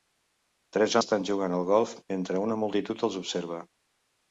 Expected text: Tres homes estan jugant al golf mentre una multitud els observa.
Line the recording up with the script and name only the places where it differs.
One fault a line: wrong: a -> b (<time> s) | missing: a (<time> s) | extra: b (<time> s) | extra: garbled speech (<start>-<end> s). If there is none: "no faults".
missing: homes (0.9 s)